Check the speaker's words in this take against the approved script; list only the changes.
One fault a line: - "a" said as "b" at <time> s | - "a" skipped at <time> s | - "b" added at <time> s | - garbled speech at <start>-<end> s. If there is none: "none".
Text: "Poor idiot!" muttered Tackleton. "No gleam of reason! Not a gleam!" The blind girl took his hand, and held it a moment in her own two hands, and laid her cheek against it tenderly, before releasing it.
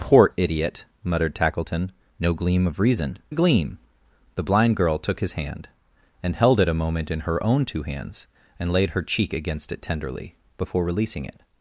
- "Not" skipped at 3.2 s